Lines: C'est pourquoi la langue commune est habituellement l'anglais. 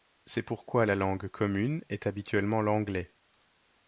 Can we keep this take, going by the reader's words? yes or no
yes